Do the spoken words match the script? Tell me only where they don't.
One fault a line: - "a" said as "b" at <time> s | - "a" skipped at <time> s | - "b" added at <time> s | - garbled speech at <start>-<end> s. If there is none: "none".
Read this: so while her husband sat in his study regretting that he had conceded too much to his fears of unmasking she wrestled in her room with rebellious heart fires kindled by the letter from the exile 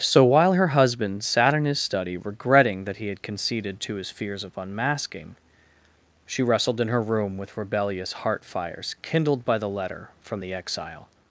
- "too much" skipped at 3.8 s